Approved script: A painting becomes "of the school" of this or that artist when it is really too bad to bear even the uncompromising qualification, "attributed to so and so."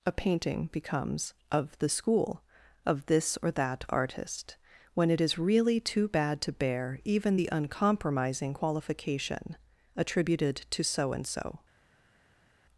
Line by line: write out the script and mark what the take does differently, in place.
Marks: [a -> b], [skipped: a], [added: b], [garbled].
A painting becomes "of the school" of this or that artist when it is really too bad to bear even the uncompromising qualification, "attributed to so and so."